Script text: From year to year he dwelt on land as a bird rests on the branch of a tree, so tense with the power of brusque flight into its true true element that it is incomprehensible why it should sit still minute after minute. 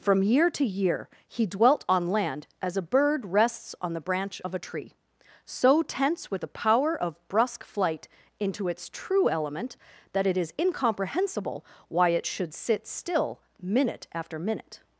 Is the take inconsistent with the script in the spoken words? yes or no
yes